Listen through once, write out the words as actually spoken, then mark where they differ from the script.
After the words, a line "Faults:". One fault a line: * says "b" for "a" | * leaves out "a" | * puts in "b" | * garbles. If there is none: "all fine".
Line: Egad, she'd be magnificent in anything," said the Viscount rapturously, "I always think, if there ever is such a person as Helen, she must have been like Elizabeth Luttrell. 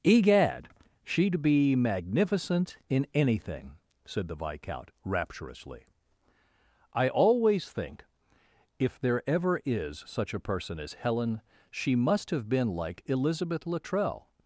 Egad, she'd be magnificent in anything," said the Viscount rapturously, "I always think, if there ever is such a person as Helen, she must have been like Elizabeth Luttrell.
Faults:
all fine